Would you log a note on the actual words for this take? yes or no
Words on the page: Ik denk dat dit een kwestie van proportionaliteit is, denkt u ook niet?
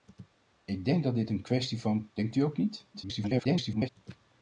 yes